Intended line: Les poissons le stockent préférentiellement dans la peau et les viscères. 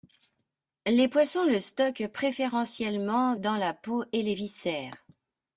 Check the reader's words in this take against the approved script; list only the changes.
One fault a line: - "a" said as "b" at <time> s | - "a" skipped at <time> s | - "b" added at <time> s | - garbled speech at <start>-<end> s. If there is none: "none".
none